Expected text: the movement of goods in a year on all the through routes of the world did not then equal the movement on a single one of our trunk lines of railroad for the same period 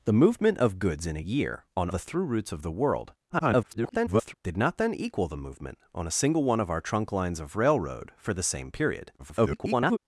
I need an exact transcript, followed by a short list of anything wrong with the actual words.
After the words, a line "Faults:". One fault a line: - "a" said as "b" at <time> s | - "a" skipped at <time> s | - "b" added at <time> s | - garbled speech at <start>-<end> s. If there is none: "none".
the movement of goods in a year on the through routes of the world [garbled] did not then equal the movement on a single one of our trunk lines of railroad for the same period [garbled]
Faults:
- "all" skipped at 1.9 s
- garbled speech at 3.3-4.3 s
- garbled speech at 9.2-10.0 s